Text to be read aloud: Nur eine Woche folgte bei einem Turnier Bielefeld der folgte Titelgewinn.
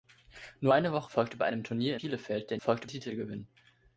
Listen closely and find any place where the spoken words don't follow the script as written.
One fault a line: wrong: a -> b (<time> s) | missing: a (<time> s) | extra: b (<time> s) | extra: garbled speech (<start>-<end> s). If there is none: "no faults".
no faults